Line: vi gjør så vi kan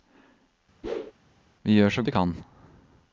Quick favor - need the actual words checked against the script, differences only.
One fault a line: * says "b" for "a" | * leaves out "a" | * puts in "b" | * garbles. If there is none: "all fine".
all fine